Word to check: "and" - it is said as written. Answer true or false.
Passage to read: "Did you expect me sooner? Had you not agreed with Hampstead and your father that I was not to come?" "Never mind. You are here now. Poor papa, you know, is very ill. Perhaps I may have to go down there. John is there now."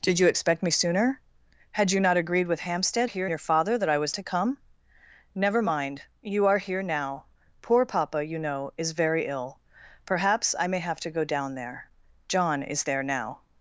false